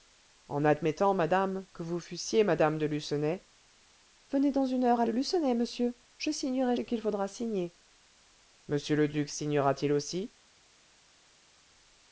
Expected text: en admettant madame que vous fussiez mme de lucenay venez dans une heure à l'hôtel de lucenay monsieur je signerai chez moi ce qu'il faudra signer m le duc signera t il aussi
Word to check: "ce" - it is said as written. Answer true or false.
false